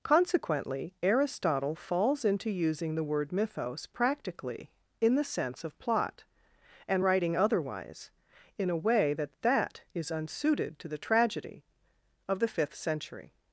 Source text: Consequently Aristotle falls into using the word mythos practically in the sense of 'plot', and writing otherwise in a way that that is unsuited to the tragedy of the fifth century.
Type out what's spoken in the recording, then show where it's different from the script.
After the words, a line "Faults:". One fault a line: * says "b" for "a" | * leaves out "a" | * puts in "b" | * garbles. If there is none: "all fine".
Consequently Aristotle falls into using the word mythos practically in the sense of 'plot', and writing otherwise in a way that that is unsuited to the tragedy of the fifth century.
Faults:
all fine